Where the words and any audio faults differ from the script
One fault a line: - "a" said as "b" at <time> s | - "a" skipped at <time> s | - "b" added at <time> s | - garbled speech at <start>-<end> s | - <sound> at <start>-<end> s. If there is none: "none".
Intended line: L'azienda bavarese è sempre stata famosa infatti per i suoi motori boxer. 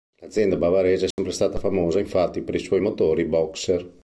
- dropout at 1.1-1.2 s